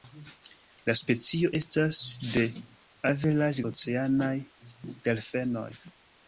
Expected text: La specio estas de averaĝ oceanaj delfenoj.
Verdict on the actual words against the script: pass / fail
pass